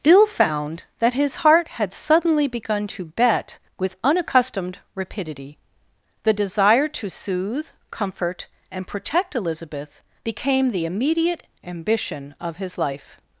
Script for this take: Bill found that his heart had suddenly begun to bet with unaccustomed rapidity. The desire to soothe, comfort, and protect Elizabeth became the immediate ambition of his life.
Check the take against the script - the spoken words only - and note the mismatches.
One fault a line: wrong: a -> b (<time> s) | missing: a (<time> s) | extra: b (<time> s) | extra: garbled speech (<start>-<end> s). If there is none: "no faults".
no faults